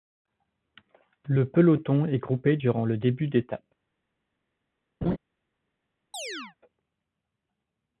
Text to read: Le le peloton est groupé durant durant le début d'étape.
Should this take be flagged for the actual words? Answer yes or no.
yes